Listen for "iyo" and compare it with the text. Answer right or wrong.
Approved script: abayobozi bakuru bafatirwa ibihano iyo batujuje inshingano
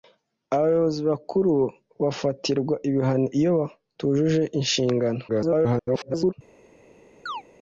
right